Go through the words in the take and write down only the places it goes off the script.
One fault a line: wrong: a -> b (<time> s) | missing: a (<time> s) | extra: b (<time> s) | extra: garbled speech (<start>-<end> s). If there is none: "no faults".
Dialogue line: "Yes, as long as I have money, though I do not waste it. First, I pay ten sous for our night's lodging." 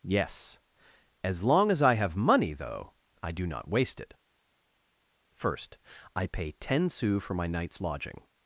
wrong: our -> my (7.3 s)